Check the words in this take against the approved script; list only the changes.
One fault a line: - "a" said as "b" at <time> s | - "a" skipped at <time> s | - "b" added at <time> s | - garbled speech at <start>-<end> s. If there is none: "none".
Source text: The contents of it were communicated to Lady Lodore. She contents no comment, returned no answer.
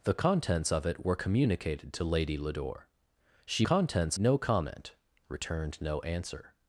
none